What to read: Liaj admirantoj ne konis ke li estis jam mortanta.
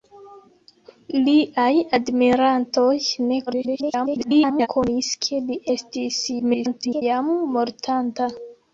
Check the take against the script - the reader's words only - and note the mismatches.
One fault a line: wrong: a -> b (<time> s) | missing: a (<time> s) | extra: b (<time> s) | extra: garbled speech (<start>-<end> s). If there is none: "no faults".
extra: garbled speech (3.5-4.7 s)
extra: garbled speech (6.4-7.0 s)